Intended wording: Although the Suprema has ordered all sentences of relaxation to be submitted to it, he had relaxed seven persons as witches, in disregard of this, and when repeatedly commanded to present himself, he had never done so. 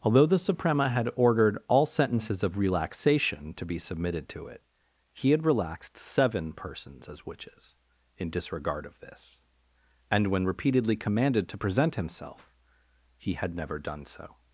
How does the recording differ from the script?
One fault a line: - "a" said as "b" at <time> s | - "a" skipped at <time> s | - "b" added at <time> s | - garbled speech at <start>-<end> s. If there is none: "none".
- "has" said as "had" at 0.9 s